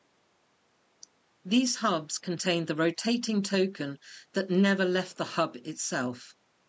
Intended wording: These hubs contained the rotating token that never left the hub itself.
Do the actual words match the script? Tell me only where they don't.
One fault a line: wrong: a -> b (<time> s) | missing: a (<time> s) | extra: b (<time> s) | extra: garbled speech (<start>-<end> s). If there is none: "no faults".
no faults